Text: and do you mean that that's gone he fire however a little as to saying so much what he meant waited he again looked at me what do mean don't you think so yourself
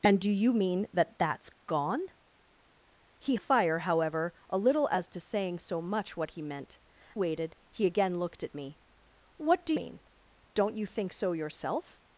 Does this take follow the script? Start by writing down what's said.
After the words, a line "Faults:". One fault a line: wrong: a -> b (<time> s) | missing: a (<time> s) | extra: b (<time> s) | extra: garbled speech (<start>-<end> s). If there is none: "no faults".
and do you mean that that's gone he fire however a little as to saying so much what he meant waited he again looked at me what do mean don't you think so yourself
Faults:
no faults